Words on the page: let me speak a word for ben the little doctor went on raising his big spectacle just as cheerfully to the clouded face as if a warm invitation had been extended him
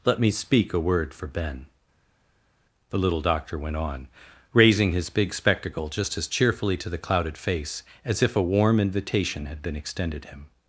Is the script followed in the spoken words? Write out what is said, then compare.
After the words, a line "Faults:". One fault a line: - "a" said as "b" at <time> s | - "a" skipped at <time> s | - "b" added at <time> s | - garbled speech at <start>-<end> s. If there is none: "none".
let me speak a word for ben the little doctor went on raising his big spectacle just as cheerfully to the clouded face as if a warm invitation had been extended him
Faults:
none